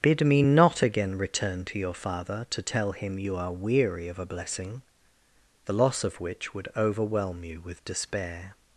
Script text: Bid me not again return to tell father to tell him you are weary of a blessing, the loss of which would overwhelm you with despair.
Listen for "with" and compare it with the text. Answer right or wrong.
right